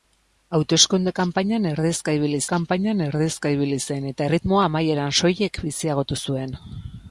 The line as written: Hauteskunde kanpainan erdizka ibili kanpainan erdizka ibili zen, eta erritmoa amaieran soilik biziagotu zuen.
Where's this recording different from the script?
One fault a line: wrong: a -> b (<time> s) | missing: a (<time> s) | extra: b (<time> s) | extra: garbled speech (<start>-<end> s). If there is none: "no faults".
no faults